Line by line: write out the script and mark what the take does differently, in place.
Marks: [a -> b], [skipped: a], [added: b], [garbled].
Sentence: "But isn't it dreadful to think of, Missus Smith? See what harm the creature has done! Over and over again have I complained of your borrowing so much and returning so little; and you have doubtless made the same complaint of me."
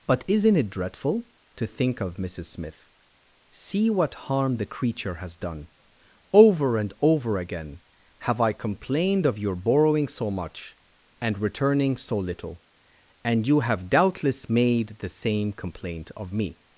"But isn't it dreadful to think of, Missus Smith? See what harm the creature has done! Over and over again have I complained of your borrowing so much and returning so little; and you have doubtless made the same complaint of me."